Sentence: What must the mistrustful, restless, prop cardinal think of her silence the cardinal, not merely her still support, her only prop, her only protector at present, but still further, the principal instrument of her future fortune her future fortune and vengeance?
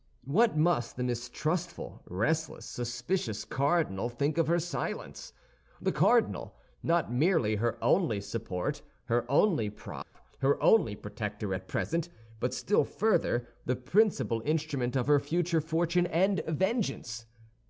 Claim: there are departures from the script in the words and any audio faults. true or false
true